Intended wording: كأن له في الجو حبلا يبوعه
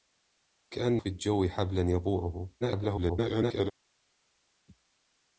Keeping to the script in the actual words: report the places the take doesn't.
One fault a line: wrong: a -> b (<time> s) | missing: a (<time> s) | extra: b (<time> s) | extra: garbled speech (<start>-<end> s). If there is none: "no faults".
missing: له (1.0 s)
extra: garbled speech (2.6-3.7 s)